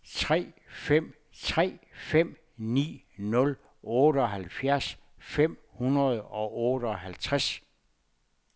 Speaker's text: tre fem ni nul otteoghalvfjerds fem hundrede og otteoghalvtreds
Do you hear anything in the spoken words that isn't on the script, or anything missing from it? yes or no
yes